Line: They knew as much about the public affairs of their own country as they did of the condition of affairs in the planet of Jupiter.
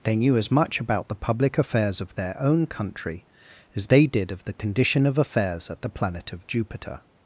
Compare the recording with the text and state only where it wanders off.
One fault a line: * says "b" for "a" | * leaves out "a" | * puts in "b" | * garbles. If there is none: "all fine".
* says "at" for "in"